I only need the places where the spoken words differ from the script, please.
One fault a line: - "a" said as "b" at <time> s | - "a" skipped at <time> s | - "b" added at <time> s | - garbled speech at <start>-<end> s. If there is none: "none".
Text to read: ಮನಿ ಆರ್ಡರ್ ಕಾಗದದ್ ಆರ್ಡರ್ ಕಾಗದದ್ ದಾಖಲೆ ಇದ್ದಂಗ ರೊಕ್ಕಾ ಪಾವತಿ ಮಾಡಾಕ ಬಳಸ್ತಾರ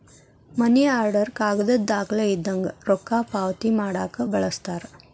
- "ಆರ್ಡರ್ ಕಾಗದದ್" skipped at 1.9 s